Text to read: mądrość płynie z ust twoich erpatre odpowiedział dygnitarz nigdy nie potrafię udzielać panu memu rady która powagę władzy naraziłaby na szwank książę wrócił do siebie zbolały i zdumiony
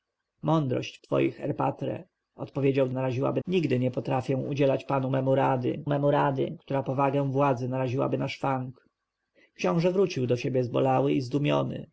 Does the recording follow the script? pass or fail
fail